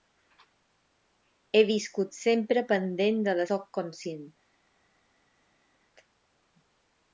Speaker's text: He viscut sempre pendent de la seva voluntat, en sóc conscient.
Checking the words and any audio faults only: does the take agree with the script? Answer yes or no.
no